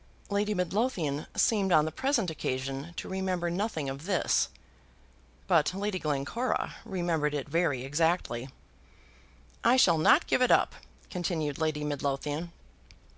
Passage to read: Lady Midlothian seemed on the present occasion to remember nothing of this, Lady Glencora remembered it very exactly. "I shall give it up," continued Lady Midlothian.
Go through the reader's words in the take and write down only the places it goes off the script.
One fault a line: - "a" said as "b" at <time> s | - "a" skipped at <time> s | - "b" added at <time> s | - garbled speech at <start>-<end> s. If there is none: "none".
- "but" added at 5.5 s
- "not" added at 10.0 s